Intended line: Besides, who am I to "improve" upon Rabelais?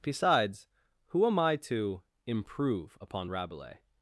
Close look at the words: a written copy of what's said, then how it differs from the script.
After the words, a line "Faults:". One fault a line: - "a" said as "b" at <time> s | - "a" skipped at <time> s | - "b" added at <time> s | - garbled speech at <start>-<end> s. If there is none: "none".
Besides, who am I to "improve" upon Rabelais?
Faults:
none